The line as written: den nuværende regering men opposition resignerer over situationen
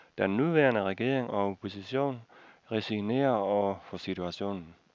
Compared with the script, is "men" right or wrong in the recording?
wrong